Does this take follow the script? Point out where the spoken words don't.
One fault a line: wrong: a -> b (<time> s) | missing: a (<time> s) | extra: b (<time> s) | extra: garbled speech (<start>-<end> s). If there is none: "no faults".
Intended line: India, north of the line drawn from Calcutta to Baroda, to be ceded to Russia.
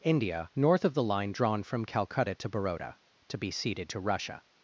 no faults